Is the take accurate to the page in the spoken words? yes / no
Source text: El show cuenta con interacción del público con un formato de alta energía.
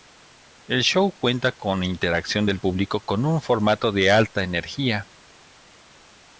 yes